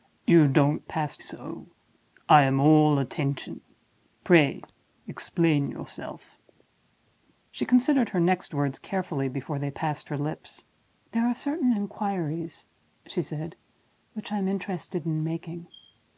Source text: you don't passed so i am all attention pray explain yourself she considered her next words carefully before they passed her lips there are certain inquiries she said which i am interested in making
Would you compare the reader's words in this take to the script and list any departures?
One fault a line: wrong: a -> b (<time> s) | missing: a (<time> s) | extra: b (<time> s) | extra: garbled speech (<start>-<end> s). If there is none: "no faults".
no faults